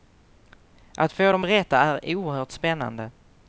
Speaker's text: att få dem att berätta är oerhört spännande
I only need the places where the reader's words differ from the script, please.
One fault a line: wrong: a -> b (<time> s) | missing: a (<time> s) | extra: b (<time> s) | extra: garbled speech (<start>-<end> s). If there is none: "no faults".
missing: att (1.4 s)